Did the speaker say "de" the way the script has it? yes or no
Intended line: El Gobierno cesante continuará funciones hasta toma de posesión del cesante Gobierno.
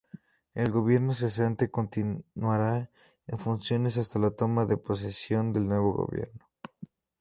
yes